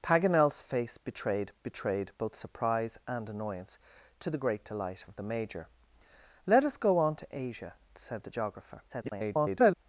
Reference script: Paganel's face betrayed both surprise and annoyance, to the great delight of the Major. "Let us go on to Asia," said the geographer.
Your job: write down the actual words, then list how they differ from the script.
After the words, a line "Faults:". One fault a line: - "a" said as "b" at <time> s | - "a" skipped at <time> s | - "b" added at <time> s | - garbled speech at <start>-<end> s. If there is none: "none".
Paganel's face betrayed betrayed both surprise and annoyance, to the great delight of the Major. "Let us go on to Asia," said the geographer. [garbled]
Faults:
- "betrayed" added at 1.6 s
- garbled speech at 8.9-9.8 s